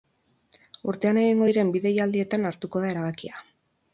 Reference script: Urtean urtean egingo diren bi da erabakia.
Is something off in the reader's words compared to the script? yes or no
yes